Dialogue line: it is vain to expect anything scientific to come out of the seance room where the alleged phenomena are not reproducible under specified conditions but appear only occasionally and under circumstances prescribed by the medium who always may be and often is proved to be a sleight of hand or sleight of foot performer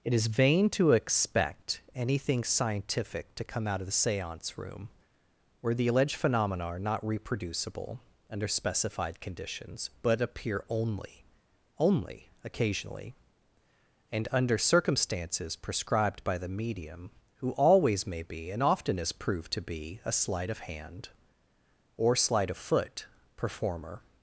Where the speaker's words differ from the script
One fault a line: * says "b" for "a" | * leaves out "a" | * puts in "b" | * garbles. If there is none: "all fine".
* puts in "only"